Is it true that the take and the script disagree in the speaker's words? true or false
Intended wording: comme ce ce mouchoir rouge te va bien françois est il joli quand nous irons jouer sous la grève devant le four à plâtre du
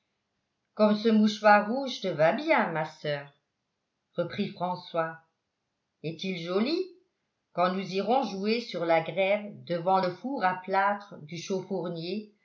true